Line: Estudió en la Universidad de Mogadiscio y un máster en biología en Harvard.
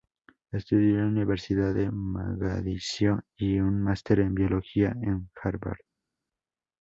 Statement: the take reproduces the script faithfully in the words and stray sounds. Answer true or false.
true